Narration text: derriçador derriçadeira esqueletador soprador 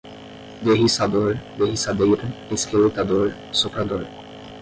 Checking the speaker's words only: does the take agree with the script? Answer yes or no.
yes